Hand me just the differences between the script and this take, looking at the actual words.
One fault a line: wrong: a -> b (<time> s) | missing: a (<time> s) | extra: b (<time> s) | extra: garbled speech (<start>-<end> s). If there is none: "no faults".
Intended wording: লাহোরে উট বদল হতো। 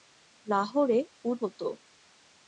missing: বদল (1.4 s)